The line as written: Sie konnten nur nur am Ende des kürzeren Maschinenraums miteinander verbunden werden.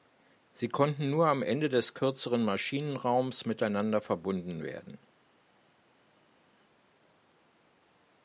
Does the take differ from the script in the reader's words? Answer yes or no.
yes